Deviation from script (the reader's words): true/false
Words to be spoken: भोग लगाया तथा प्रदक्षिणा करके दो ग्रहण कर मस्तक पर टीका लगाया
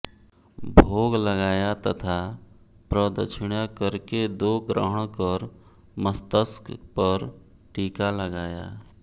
false